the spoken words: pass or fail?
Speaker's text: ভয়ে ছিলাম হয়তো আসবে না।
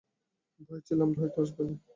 pass